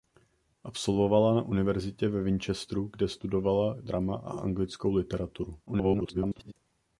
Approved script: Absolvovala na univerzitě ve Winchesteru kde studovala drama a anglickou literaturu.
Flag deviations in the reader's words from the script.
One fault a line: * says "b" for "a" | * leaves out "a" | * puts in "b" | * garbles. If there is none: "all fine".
* garbles